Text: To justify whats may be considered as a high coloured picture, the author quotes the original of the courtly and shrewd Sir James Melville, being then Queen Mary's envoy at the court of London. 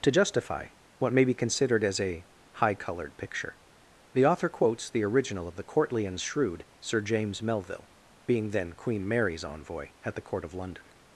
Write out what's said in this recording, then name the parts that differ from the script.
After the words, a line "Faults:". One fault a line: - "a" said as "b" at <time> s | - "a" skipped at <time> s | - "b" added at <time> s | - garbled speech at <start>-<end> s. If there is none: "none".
To justify what may be considered as a high coloured picture, the author quotes the original of the courtly and shrewd Sir James Melville, being then Queen Mary's envoy at the court of London.
Faults:
- "whats" said as "what" at 1.0 s